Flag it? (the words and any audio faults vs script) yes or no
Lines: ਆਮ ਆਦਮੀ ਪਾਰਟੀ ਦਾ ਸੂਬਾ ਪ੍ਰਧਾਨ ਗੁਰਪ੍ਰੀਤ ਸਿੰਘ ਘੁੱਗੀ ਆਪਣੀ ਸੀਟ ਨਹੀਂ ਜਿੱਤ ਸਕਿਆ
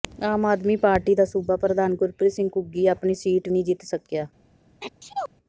yes